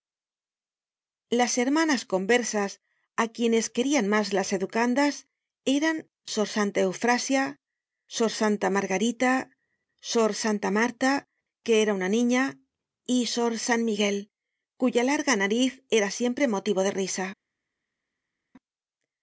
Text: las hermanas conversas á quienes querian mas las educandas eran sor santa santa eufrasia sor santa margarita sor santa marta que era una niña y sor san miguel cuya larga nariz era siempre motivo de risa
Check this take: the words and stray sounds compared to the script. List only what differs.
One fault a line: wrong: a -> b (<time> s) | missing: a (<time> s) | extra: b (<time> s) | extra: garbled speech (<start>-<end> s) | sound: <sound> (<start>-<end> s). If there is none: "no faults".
missing: santa (6.8 s)